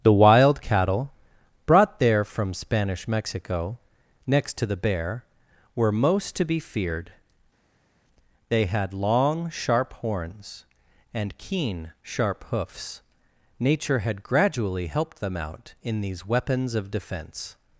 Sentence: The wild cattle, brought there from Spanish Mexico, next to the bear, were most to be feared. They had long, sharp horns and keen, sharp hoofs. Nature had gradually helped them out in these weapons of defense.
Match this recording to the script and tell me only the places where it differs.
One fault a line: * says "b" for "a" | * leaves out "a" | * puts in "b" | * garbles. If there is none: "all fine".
all fine